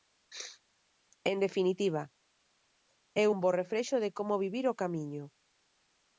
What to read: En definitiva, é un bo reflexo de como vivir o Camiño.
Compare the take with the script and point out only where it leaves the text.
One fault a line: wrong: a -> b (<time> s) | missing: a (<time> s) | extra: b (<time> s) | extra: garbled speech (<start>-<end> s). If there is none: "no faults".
no faults